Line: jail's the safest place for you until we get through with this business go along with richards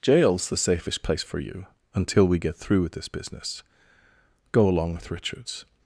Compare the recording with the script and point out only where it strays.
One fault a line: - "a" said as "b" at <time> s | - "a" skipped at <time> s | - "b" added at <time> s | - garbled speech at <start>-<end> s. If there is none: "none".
none